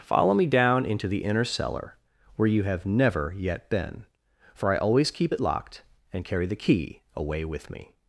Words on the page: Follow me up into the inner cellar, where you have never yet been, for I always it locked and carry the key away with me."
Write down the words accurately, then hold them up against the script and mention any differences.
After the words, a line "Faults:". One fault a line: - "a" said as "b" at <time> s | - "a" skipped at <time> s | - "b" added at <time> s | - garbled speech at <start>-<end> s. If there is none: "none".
Follow me down into the inner cellar, where you have never yet been, for I always keep it locked and carry the key away with me."
Faults:
- "up" said as "down" at 0.5 s
- "keep" added at 5.1 s